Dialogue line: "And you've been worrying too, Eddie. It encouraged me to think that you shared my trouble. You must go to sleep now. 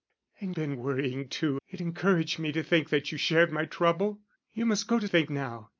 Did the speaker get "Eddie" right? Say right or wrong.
wrong